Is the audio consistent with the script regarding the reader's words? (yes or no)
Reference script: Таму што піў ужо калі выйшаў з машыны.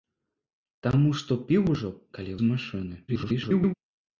no